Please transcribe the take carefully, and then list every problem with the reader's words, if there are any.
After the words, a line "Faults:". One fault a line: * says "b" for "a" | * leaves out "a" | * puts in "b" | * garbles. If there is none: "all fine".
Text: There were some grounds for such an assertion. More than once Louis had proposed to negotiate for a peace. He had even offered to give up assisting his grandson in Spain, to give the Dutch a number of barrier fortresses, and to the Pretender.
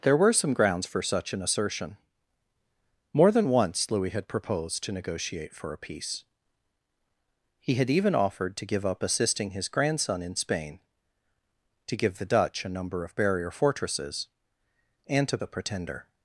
There were some grounds for such an assertion. More than once Louis had proposed to negotiate for a peace. He had even offered to give up assisting his grandson in Spain, to give the Dutch a number of barrier fortresses, and to the Pretender.
Faults:
all fine